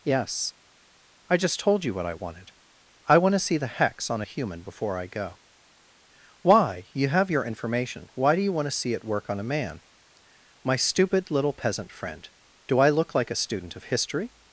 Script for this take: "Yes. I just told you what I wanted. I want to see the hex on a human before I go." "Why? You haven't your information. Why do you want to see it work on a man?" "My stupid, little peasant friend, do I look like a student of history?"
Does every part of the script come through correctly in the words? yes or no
no